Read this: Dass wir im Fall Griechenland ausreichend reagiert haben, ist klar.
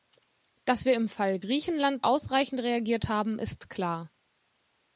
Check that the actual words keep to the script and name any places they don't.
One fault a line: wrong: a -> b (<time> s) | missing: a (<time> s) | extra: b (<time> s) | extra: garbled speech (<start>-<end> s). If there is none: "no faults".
no faults